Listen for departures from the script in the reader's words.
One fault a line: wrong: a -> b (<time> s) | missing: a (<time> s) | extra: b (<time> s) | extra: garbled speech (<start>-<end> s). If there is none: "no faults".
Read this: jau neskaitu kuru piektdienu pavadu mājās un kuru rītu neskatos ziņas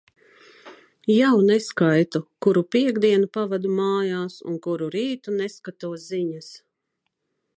no faults